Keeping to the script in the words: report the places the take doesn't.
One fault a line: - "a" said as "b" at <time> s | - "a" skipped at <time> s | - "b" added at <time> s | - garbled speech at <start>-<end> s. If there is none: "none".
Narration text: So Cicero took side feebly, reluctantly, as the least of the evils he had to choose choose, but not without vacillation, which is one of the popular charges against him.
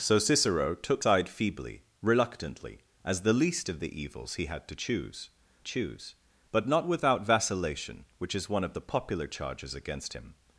none